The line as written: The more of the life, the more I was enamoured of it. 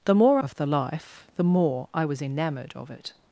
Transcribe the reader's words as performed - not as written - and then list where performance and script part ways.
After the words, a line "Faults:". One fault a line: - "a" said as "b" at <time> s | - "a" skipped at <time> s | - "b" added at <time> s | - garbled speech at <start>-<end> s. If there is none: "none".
The more of the life, the more I was enamoured of it.
Faults:
none